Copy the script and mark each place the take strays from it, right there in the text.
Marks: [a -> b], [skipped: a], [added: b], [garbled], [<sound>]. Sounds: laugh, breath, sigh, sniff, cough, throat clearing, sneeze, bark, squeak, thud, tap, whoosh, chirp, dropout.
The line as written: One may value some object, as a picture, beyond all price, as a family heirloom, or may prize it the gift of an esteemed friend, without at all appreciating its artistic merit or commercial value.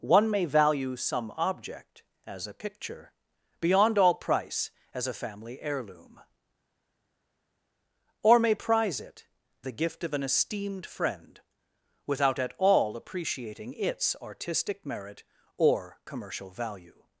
One may value some object, as a picture, beyond all price, as a family heirloom, or may prize it the gift of an esteemed friend, without at all appreciating its artistic merit or commercial value.